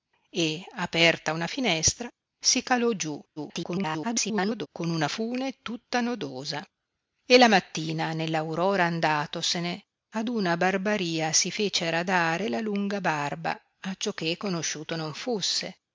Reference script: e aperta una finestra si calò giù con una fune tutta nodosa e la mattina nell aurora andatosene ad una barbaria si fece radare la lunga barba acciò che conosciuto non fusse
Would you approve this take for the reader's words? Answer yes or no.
no